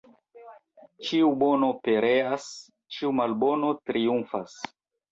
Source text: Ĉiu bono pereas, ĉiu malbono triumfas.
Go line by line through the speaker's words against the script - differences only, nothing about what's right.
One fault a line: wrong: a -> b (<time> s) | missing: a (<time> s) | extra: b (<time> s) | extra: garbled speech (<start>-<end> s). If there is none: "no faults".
no faults